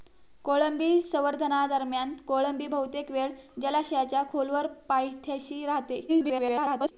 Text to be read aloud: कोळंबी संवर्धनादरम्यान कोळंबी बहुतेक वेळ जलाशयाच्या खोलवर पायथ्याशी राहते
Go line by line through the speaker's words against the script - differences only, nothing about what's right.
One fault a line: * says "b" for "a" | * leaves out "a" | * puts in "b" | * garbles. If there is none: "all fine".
* garbles